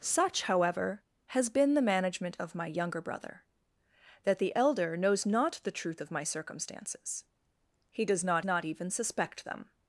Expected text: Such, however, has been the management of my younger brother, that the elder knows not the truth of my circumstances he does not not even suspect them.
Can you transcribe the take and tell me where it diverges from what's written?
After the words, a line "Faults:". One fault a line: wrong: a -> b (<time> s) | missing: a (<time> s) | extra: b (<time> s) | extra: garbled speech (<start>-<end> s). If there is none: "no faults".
Such, however, has been the management of my younger brother, that the elder knows not the truth of my circumstances he does not not even suspect them.
Faults:
no faults